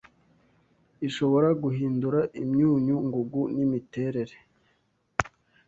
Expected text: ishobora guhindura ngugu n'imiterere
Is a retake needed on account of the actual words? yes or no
yes